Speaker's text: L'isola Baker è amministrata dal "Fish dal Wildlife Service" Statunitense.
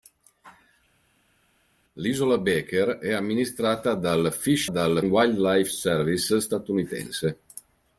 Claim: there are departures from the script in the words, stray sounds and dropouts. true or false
false